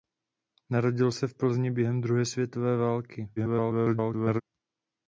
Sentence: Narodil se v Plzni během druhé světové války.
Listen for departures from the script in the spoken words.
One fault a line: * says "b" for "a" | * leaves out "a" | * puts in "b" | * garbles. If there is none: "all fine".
* garbles